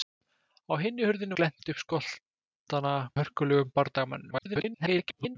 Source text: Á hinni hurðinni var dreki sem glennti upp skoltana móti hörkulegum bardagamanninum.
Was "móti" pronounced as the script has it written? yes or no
no